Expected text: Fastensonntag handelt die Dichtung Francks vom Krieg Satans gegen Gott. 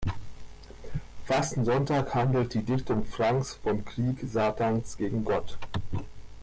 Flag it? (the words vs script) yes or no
no